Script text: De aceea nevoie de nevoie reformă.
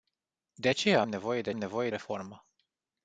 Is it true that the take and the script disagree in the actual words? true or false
false